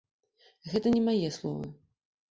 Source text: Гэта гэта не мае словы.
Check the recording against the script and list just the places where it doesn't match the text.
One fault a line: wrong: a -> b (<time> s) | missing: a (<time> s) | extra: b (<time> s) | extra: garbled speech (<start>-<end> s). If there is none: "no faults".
missing: гэта (0.9 s)